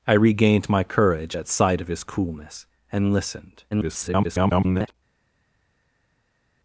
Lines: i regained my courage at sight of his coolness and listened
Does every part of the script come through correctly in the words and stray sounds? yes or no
no